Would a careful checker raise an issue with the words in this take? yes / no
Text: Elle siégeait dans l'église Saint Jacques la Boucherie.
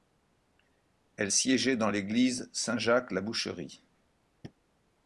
no